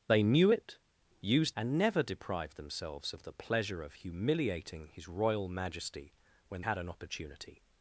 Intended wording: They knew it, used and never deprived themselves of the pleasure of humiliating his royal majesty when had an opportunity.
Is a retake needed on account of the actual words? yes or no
no